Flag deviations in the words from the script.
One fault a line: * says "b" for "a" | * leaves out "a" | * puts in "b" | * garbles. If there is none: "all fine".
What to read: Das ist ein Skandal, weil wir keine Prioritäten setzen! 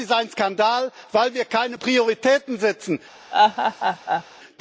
all fine